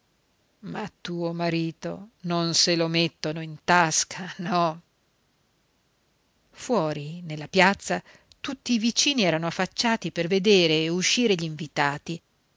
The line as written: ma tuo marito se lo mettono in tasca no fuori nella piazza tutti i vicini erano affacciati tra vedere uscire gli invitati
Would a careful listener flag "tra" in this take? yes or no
yes